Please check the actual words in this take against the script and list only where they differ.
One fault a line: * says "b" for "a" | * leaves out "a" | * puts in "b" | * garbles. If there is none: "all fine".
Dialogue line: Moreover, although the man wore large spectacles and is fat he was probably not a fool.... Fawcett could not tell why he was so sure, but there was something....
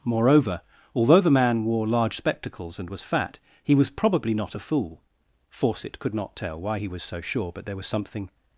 * says "was" for "is"